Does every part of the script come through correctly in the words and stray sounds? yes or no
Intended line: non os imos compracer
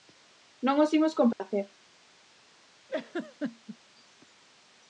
no